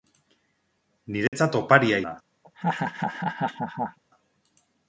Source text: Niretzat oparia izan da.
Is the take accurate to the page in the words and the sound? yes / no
no